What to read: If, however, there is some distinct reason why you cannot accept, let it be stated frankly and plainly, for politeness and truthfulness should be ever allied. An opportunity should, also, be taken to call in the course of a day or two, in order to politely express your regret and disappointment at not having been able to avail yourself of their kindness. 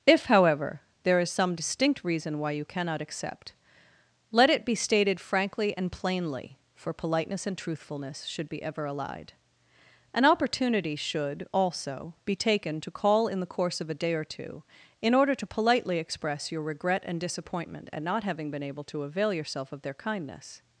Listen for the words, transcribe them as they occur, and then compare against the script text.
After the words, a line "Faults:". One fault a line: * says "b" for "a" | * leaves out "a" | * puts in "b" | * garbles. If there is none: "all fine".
If, however, there is some distinct reason why you cannot accept, let it be stated frankly and plainly, for politeness and truthfulness should be ever allied. An opportunity should, also, be taken to call in the course of a day or two, in order to politely express your regret and disappointment at not having been able to avail yourself of their kindness.
Faults:
all fine